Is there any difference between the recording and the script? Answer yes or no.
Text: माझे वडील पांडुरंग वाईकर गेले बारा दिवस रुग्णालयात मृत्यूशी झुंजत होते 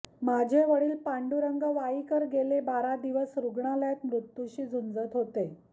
no